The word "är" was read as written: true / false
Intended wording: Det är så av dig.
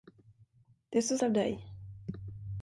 true